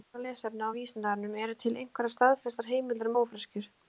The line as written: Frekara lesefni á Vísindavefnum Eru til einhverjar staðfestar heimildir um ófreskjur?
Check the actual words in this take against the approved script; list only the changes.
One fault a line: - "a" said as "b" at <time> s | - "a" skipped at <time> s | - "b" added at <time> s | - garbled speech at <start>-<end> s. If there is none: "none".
none